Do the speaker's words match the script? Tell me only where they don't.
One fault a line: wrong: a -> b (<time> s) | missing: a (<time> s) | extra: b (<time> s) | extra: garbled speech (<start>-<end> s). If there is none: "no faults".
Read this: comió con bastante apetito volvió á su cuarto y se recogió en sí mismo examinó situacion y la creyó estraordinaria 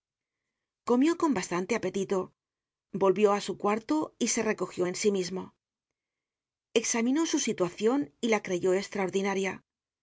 extra: su (7.3 s)